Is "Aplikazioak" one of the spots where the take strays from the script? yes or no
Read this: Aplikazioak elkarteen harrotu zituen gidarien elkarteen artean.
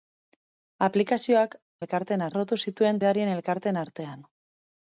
no